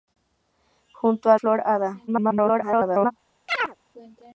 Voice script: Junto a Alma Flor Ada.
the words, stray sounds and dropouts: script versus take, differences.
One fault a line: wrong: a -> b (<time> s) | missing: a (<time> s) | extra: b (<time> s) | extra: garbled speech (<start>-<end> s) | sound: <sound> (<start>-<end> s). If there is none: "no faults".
missing: Alma (1.4 s)
extra: garbled speech (2.1-3.1 s)
sound: chirp (3.5-3.8 s)